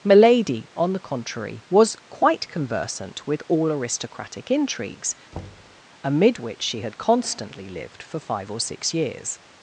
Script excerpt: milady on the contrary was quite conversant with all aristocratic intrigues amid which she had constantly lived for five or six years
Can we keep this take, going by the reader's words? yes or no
yes